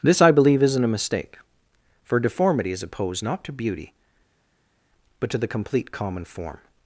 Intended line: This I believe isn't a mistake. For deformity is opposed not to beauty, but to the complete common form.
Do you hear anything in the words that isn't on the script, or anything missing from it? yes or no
no